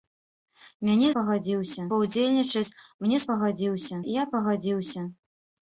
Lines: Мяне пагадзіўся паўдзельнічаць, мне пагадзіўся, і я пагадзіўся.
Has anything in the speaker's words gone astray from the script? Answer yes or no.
no